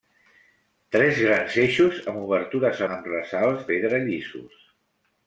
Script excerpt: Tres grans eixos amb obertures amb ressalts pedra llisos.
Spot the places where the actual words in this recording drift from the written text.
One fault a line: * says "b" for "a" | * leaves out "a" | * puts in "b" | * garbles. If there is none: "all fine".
all fine